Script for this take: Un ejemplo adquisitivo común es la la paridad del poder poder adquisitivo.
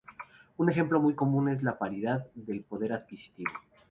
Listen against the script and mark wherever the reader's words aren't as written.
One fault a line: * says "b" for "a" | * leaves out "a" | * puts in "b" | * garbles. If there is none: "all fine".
* says "muy" for "adquisitivo"
* leaves out "la"
* leaves out "poder"